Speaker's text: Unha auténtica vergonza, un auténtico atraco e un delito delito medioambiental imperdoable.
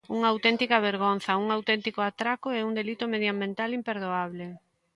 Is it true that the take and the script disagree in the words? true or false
true